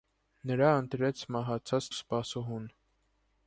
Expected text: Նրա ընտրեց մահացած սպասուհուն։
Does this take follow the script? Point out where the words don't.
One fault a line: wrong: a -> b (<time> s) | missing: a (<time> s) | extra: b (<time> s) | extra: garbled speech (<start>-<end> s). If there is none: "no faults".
no faults